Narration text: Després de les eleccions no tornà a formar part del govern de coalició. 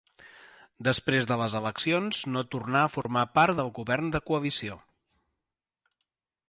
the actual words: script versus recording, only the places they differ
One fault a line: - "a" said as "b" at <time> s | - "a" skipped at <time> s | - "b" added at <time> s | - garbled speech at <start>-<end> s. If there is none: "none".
none